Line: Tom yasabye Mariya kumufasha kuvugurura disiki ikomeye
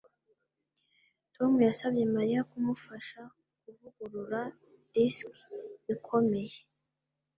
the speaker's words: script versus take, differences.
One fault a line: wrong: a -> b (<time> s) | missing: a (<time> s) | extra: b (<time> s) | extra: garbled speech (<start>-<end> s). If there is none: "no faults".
no faults